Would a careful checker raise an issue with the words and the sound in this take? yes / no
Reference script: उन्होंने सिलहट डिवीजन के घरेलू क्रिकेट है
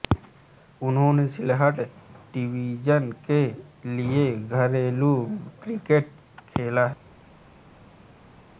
yes